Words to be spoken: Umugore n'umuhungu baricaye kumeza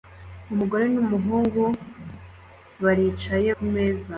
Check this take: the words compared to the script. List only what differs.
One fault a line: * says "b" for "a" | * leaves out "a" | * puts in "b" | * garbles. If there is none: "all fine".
all fine